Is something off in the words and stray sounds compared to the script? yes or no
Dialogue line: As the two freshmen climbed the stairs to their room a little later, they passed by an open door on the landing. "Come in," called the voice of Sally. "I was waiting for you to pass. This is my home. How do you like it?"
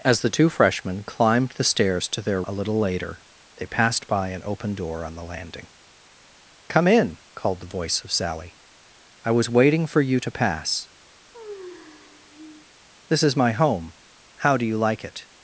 yes